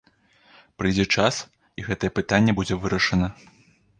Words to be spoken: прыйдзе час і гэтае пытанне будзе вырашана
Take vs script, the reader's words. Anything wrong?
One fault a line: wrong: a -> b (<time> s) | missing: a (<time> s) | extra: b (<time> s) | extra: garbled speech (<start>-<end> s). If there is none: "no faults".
no faults